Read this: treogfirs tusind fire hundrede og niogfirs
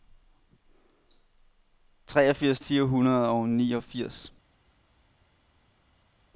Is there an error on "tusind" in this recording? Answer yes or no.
yes